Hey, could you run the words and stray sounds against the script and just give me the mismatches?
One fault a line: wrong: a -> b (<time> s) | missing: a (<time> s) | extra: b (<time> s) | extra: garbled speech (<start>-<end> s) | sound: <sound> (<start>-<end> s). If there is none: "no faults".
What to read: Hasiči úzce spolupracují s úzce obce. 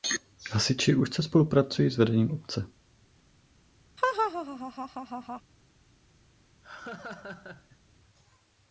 wrong: úzce -> vedením (2.0 s)
sound: laugh (4.0-5.4 s)
sound: laugh (6.6-7.8 s)